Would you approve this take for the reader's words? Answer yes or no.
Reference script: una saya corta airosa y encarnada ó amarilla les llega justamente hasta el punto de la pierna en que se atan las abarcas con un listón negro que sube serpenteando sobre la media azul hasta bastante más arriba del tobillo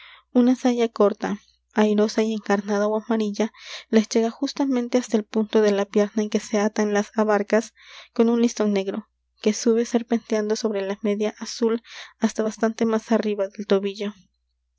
yes